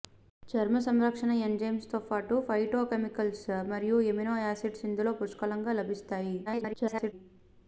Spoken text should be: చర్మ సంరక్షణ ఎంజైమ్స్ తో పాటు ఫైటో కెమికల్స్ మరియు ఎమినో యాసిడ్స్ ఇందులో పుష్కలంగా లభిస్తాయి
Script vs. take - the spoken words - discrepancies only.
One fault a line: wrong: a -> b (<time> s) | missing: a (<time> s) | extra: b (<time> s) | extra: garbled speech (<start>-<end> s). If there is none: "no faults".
extra: garbled speech (6.5-7.1 s)